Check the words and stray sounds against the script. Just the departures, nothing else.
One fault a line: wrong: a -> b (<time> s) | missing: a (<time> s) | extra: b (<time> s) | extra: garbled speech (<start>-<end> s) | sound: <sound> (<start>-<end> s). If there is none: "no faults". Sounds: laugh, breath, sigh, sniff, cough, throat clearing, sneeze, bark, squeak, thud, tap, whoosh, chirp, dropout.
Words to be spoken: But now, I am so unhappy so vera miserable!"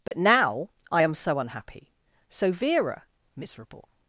sound: dropout (0.1-0.1 s)